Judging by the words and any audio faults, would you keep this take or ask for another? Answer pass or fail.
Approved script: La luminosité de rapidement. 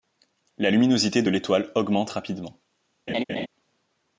fail